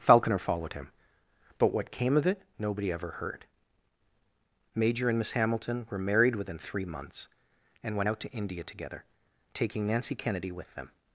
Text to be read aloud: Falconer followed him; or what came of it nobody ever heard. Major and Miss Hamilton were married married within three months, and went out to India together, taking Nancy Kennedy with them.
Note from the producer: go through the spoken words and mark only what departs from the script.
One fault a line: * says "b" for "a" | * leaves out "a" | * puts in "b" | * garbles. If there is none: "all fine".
* says "but" for "or"
* leaves out "married"